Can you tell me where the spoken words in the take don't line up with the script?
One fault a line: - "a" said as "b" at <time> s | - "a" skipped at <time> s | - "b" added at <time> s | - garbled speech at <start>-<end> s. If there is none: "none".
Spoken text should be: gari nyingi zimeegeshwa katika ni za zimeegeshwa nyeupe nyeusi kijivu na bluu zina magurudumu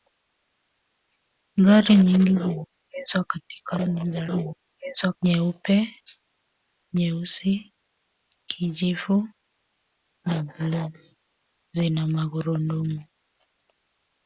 none